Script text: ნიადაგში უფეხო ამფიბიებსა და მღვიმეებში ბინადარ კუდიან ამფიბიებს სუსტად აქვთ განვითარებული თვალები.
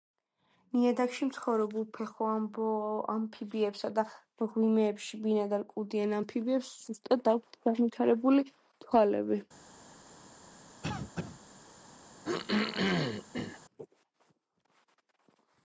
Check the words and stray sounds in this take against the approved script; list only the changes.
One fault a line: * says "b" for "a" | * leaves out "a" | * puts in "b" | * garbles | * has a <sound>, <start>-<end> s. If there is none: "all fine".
* puts in "მცხოვრებ"
* has a cough, 10.8-11.4 s
* has a throat clearing, 12.2-13.6 s